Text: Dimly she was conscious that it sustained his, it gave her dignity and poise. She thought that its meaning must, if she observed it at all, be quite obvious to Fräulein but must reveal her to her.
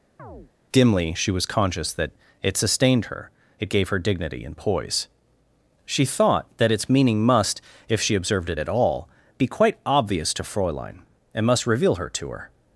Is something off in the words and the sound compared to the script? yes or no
yes